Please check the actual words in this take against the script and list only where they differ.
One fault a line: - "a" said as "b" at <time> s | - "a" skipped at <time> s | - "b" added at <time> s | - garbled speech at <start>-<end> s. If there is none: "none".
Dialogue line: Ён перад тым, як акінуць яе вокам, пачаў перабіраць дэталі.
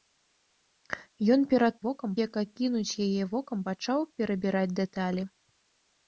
- "тым" said as "вокам" at 1.8 s